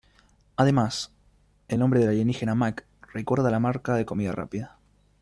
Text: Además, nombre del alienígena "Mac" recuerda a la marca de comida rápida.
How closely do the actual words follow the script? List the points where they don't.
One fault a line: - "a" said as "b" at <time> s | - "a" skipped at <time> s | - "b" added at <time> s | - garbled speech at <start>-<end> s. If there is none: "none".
- "el" added at 1.7 s